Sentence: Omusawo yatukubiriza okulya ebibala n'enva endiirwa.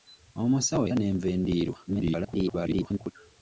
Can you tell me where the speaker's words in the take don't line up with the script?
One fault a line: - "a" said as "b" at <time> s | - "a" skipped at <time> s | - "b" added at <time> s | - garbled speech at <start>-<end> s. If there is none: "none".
- "yatukubiriza okulya ebibala" skipped at 0.8 s
- garbled speech at 1.9-3.1 s